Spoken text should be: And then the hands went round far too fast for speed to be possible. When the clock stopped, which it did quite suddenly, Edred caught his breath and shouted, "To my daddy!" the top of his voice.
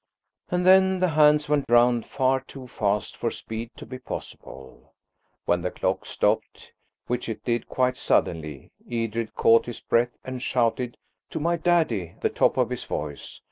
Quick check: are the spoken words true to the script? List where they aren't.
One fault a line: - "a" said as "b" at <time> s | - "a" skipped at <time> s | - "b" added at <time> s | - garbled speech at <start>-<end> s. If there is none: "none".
none